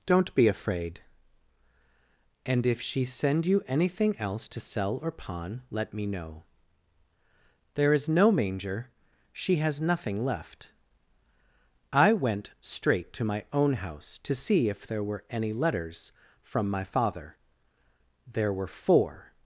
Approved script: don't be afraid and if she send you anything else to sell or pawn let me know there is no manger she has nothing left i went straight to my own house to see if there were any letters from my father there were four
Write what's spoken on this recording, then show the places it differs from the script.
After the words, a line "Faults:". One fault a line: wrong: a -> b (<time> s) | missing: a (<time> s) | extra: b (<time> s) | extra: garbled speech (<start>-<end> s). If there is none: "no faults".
don't be afraid and if she send you anything else to sell or pawn let me know there is no manger she has nothing left i went straight to my own house to see if there were any letters from my father there were four
Faults:
no faults